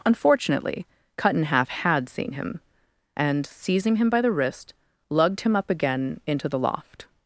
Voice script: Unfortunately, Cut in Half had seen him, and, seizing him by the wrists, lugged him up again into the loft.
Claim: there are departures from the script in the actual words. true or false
true